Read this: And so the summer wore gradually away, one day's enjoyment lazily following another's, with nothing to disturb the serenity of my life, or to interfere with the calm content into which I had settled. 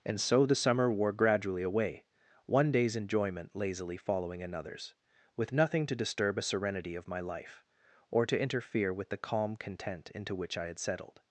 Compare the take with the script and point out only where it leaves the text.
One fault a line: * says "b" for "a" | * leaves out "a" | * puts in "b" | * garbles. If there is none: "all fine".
* says "a" for "the"